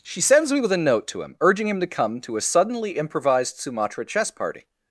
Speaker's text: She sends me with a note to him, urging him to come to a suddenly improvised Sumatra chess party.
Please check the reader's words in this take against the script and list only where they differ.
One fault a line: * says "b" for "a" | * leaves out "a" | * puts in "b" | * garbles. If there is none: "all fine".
all fine